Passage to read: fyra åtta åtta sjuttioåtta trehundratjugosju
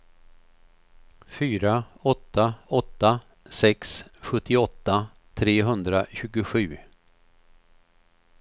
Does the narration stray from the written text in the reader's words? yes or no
yes